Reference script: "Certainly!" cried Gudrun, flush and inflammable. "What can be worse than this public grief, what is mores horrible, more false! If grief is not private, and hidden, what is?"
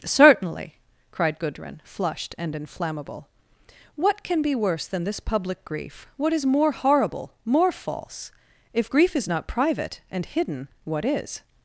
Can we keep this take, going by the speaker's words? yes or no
no